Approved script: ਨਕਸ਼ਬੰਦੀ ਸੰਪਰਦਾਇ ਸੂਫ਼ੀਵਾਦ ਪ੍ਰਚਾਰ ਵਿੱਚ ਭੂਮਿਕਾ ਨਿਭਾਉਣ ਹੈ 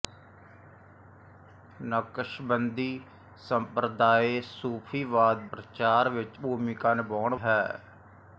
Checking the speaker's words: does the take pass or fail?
pass